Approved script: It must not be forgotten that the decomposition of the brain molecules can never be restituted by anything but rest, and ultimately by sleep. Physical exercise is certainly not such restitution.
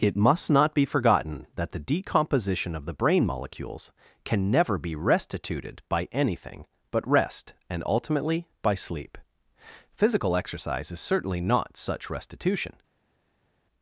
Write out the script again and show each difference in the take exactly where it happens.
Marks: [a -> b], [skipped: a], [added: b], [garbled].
It must not be forgotten that the decomposition of the brain molecules can never be restituted by anything but rest, and ultimately by sleep. Physical exercise is certainly not such restitution.